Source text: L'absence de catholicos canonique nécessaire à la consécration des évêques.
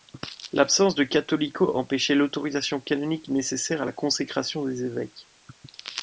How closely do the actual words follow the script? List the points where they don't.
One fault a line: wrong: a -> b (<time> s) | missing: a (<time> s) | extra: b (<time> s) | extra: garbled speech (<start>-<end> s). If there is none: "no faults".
extra: empêchait l'autorisation (1.8 s)